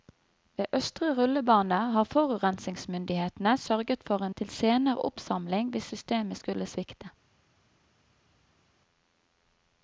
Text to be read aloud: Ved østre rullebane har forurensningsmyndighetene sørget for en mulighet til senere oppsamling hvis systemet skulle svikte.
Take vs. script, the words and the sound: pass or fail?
fail